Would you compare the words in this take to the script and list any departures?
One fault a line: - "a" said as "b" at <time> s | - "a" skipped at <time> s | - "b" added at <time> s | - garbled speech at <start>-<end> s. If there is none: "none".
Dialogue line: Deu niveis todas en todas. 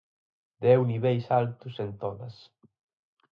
- "todas" said as "altos" at 1.4 s